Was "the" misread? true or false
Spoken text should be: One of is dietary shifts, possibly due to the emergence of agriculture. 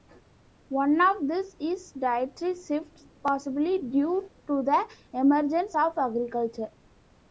false